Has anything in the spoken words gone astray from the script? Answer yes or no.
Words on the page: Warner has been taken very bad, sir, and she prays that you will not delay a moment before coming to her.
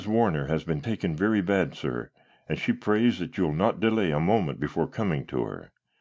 no